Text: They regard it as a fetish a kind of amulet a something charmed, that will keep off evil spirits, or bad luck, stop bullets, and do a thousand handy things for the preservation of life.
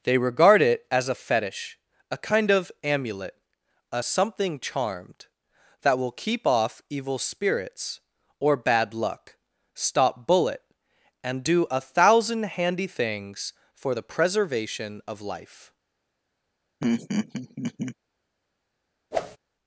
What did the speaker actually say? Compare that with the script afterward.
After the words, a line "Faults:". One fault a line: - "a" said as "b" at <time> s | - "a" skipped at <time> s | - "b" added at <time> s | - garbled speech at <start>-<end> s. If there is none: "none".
They regard it as a fetish a kind of amulet a something charmed, that will keep off evil spirits, or bad luck, stop bullet, and do a thousand handy things for the preservation of life.
Faults:
- "bullets" said as "bullet" at 10.3 s